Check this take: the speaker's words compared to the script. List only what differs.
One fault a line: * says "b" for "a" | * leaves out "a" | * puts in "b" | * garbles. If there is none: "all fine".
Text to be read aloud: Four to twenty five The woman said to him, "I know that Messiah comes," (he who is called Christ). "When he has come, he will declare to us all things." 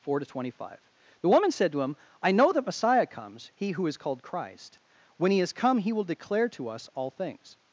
all fine